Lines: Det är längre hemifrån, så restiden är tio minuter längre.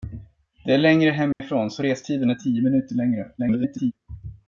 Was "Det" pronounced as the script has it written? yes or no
yes